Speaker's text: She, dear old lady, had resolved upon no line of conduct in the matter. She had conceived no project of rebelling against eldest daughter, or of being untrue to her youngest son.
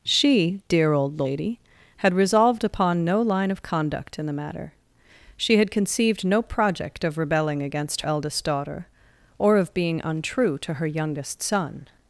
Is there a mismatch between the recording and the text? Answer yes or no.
no